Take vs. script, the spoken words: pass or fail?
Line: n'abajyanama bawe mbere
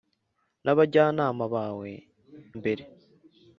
pass